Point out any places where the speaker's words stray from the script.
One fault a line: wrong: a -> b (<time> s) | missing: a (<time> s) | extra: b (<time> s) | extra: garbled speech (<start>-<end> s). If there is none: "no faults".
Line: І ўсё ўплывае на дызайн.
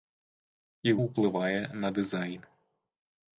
missing: ўсё (0.9 s)